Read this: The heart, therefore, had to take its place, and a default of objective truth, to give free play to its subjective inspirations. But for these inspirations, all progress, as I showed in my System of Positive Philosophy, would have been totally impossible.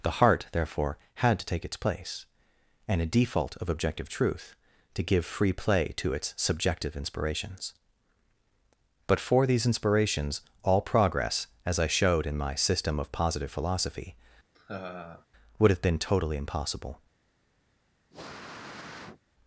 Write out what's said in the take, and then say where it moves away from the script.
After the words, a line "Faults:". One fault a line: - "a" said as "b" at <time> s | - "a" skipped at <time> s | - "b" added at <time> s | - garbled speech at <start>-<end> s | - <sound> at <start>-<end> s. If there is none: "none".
The heart, therefore, had to take its place, and a default of objective truth, to give free play to its subjective inspirations. But for these inspirations, all progress, as I showed in my System of Positive Philosophy, would have been totally impossible.
Faults:
- laugh at 14.5-15.3 s
- sniff at 18.1-19.2 s